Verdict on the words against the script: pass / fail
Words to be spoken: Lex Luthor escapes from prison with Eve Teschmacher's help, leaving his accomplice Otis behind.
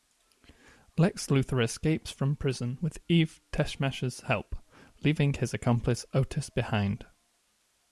pass